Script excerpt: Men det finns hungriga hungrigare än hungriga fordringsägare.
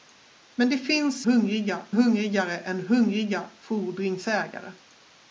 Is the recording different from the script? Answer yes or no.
no